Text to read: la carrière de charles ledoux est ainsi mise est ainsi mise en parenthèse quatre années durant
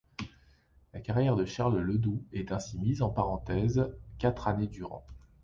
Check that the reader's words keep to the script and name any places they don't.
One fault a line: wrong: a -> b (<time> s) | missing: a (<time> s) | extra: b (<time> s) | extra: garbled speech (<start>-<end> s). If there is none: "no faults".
missing: est ainsi mise (3.0 s)